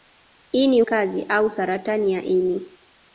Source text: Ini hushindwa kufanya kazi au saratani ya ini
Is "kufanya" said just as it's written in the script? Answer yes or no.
no